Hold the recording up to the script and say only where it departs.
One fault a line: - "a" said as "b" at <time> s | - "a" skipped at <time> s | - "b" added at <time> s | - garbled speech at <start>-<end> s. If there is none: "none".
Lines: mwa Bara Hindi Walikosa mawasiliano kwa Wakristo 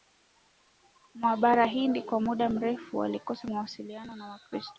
- "Kwa muda mrefu" added at 2.0 s
- "kwa" said as "na" at 4.2 s